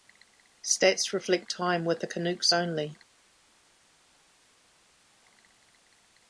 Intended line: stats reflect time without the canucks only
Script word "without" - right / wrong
wrong